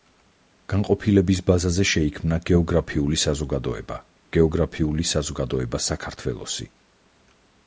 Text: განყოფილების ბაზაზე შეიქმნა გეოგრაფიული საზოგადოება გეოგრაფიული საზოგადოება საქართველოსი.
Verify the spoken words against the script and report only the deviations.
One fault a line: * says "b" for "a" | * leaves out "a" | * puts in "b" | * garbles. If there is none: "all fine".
all fine